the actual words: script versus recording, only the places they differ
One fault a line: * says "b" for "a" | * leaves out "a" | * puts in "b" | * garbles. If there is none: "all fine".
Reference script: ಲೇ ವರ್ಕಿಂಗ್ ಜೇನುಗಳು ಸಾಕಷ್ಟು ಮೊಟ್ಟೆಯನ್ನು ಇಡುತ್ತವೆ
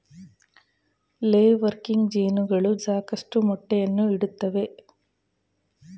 all fine